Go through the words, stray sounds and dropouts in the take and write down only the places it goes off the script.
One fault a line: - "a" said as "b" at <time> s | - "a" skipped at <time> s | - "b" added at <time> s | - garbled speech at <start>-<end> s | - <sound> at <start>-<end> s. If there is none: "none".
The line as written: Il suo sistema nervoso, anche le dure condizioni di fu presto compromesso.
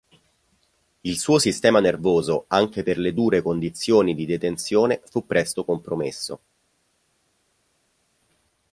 - "per" added at 2.8 s
- "detenzione" added at 4.2 s